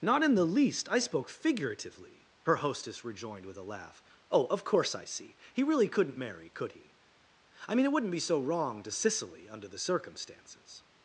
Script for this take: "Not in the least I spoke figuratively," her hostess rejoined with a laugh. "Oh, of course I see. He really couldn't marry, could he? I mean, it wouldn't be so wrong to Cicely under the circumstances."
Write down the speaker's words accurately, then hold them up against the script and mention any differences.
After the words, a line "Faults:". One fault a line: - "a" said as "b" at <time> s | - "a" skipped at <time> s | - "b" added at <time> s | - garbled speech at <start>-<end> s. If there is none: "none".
"Not in the least I spoke figuratively," her hostess rejoined with a laugh. "Oh, of course I see. He really couldn't marry, could he? I mean, it wouldn't be so wrong to Cicely under the circumstances."
Faults:
none